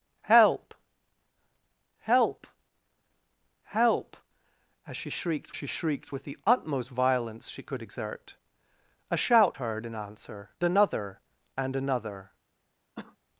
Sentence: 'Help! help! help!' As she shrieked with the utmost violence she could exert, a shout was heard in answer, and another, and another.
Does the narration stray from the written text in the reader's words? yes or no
yes